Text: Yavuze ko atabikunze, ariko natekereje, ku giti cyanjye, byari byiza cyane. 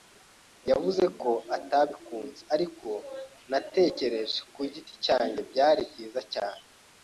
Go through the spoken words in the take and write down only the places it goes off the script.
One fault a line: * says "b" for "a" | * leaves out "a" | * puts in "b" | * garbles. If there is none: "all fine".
all fine